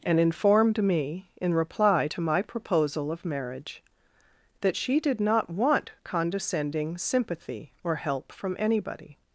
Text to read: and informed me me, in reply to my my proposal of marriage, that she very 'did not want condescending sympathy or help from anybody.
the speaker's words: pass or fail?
fail